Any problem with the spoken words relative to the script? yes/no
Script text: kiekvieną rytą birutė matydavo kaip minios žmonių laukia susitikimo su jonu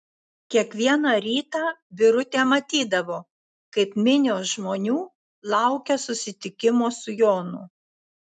no